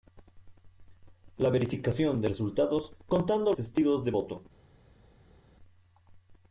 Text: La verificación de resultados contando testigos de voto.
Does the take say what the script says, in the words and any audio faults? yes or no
yes